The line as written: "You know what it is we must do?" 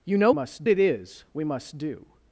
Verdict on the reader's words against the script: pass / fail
fail